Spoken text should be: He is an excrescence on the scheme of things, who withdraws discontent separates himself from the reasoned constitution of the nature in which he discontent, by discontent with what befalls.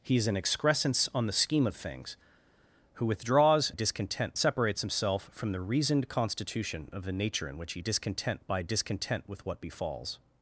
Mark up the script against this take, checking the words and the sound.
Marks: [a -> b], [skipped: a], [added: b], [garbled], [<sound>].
He is an excrescence on the scheme of things, who withdraws discontent separates himself from the reasoned constitution of the nature in which he discontent, by discontent with what befalls.